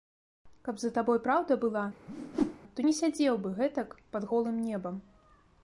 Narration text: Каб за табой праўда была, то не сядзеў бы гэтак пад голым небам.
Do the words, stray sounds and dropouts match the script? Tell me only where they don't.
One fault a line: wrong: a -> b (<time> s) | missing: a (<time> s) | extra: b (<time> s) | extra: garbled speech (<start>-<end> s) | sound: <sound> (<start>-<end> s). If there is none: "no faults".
sound: whoosh (2.1-2.6 s)